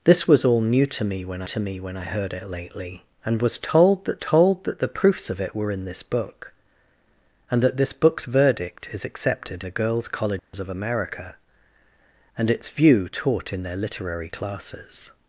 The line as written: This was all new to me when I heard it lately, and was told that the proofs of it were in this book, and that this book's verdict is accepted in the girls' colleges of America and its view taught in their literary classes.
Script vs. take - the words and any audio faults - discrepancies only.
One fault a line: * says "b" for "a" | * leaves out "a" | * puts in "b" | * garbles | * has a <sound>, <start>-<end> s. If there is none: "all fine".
* puts in "to me when"
* puts in "told that"
* leaves out "in"
* has a dropout, 10.4-10.5 s